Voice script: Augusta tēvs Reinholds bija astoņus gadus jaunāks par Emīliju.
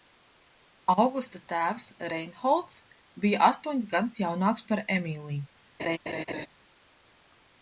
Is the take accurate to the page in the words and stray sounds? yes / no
no